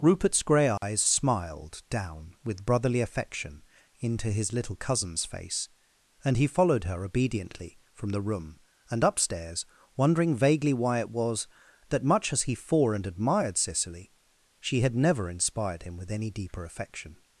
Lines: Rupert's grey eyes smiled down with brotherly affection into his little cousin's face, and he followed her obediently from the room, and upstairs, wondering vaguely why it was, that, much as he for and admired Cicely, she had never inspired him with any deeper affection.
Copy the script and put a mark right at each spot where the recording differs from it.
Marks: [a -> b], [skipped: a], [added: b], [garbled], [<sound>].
Rupert's grey eyes [dropout] smiled down with brotherly affection into his little cousin's face, and he followed her obediently from the room, and upstairs, wondering vaguely why it was, that, much as he for and admired Cicely, she had never inspired him with any deeper affection.